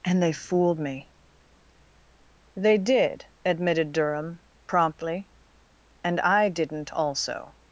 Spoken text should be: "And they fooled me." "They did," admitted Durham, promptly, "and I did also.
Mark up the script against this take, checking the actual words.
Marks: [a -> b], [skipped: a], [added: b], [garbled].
"And they fooled me." "They did," admitted Durham, promptly, "and I [did -> didn't] also.